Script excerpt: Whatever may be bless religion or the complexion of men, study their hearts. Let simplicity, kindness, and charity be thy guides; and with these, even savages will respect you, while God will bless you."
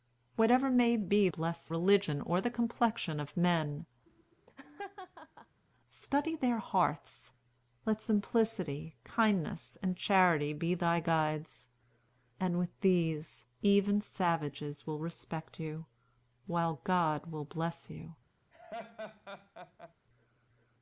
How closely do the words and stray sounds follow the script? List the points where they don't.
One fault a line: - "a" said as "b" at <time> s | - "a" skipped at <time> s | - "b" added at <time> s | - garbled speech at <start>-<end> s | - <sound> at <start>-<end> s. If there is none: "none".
- laugh at 4.1-5.6 s
- laugh at 18.5-19.9 s